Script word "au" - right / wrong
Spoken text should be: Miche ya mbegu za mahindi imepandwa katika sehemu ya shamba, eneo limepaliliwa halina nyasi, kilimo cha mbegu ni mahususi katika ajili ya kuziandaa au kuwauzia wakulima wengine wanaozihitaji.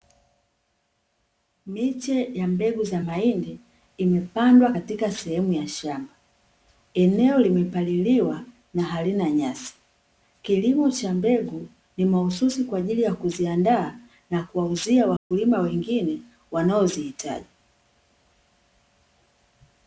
wrong